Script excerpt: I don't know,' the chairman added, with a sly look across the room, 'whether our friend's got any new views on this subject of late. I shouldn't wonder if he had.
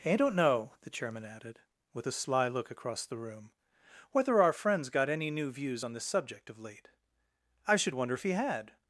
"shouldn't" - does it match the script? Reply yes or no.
no